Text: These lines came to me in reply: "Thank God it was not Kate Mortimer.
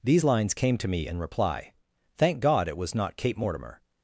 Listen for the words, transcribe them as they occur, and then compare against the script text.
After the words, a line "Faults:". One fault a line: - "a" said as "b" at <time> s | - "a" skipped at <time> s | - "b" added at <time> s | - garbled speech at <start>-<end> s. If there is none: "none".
These lines came to me in reply: "Thank God it was not Kate Mortimer.
Faults:
none